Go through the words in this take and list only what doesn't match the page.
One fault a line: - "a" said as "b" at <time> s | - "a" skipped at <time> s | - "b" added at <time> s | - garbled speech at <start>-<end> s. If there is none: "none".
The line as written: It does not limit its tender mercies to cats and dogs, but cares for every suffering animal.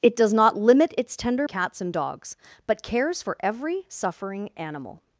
- "mercies to" skipped at 1.5 s